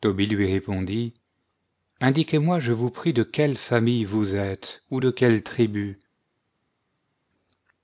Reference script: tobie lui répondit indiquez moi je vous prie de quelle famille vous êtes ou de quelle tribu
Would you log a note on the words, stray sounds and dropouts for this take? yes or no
no